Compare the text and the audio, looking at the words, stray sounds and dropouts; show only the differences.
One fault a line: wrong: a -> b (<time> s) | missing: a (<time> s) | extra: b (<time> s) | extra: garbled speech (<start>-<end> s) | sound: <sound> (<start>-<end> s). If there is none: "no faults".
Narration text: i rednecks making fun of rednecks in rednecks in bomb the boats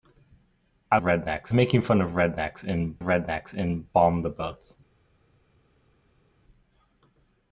no faults